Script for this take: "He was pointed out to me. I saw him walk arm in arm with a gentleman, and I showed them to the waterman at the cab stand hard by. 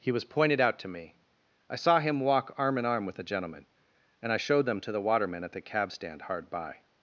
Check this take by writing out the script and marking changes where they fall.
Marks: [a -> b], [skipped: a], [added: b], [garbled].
"He was pointed out to me. I saw him walk arm in arm with a gentleman, and I showed them to the waterman at the cab stand hard by.